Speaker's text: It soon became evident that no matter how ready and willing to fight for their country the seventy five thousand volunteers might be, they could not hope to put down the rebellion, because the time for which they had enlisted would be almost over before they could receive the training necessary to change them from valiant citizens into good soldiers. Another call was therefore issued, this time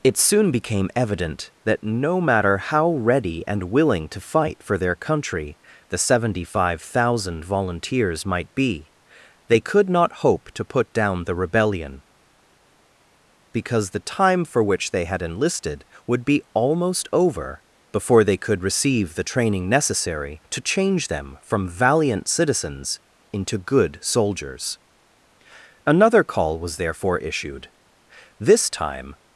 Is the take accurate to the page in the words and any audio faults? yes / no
yes